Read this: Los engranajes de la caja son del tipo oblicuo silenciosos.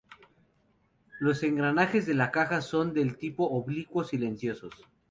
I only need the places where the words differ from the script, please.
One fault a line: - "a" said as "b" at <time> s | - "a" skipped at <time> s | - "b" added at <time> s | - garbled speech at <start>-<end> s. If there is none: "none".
none